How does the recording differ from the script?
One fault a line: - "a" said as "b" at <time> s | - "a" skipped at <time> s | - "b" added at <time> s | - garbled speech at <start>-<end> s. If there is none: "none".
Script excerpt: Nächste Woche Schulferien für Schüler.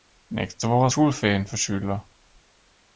none